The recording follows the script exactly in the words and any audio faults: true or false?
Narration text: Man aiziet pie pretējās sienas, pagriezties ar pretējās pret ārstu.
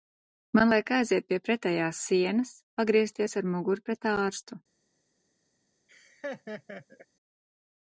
false